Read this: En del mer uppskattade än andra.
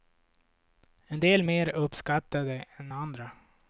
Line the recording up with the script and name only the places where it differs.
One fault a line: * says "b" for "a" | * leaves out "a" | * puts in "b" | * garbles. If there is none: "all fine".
all fine